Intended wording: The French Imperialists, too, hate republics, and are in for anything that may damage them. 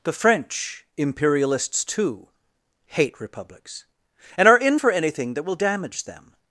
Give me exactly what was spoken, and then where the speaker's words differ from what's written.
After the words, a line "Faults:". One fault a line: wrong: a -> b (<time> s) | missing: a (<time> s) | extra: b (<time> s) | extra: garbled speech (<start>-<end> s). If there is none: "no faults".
The French Imperialists, too, hate republics, and are in for anything that will damage them.
Faults:
wrong: may -> will (5.4 s)